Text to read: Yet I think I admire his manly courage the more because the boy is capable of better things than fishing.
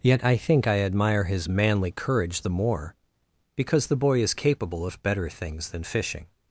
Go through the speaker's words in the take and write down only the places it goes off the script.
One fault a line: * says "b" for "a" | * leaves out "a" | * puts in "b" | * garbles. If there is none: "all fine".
all fine